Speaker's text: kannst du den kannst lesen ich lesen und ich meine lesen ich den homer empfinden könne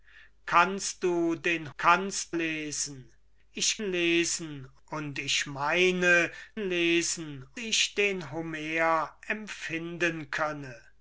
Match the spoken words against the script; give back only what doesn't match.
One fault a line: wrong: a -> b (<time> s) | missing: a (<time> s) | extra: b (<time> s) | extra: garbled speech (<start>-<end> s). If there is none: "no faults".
no faults